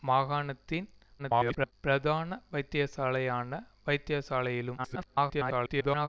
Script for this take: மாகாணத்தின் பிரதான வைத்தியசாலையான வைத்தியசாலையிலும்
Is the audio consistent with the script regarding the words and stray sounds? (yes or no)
no